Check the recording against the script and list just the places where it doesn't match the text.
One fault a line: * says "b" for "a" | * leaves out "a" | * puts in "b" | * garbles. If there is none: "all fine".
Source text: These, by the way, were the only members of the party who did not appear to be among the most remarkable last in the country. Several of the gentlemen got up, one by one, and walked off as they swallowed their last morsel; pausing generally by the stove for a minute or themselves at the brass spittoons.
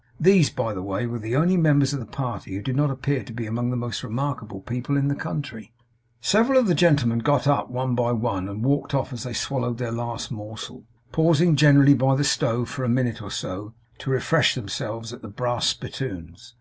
* says "people" for "last"
* puts in "so to refresh"